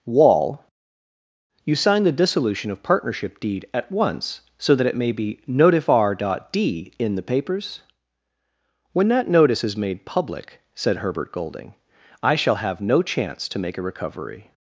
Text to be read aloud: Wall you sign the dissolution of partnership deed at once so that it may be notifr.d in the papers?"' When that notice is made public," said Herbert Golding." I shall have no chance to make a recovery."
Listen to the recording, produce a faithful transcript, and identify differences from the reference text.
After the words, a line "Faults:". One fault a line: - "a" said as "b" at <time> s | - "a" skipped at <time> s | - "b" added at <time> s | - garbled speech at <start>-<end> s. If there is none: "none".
Wall you sign the dissolution of partnership deed at once so that it may be notifr.d in the papers?"' When that notice is made public," said Herbert Golding." I shall have no chance to make a recovery."
Faults:
none